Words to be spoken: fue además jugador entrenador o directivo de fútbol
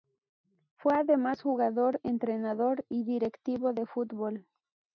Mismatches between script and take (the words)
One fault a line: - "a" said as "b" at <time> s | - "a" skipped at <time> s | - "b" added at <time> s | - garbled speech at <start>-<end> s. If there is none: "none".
- "o" said as "y" at 2.9 s